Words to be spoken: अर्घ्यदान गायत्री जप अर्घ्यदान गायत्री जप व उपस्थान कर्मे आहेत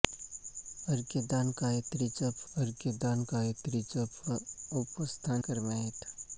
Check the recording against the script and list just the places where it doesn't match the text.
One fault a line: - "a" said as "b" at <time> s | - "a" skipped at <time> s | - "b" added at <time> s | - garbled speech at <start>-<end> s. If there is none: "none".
none